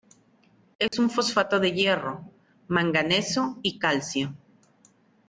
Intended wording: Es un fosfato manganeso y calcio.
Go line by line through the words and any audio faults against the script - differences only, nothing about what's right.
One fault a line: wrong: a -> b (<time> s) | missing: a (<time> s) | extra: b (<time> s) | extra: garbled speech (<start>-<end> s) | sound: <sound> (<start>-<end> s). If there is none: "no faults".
sound: dropout (0.9-0.9 s)
extra: de hierro (1.6 s)